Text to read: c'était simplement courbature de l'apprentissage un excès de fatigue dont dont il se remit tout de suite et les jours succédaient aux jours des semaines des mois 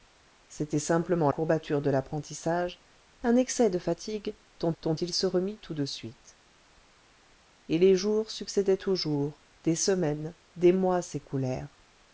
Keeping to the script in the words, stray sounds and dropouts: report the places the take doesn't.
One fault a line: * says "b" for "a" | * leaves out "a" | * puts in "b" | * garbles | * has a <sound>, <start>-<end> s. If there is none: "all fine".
all fine